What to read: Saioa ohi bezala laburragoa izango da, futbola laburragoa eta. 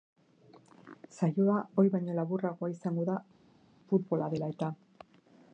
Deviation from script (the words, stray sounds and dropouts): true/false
true